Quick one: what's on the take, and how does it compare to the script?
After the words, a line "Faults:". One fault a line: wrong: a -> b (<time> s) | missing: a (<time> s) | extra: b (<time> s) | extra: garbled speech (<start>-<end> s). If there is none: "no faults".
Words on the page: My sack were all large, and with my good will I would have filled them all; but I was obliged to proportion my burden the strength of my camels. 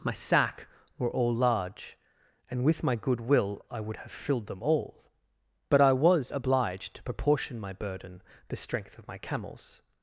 My sack were all large, and with my good will I would have filled them all; but I was obliged to proportion my burden the strength of my camels.
Faults:
no faults